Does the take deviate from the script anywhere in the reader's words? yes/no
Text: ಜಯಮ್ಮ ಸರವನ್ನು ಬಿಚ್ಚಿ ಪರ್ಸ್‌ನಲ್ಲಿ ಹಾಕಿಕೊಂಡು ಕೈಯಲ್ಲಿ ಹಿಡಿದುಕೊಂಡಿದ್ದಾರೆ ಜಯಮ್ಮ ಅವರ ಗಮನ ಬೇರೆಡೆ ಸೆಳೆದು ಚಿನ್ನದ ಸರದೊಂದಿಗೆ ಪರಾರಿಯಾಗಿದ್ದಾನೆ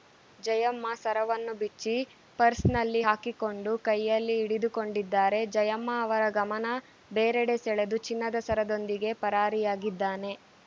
no